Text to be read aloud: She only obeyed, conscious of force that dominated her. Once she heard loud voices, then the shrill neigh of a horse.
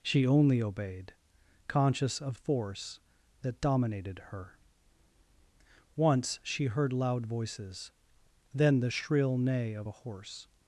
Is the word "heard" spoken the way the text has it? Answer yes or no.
yes